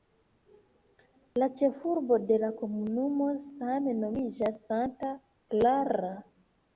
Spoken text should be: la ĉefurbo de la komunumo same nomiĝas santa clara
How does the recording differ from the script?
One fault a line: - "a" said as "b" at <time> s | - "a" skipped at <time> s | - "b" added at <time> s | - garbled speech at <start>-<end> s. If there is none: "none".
none